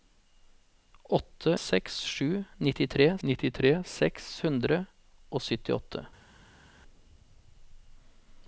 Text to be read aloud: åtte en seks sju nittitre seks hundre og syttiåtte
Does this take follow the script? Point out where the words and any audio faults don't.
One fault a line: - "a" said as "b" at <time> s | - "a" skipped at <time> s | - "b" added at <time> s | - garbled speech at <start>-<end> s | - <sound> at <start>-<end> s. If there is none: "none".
- "en" skipped at 1.6 s
- "nittitre" added at 3.3 s